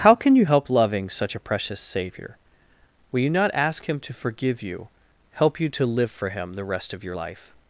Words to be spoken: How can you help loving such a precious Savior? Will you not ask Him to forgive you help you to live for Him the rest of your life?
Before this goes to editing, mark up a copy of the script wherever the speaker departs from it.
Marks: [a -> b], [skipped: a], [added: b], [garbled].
How can you help loving such a precious Savior? Will you not ask Him to forgive you help you to live for Him the rest of your life?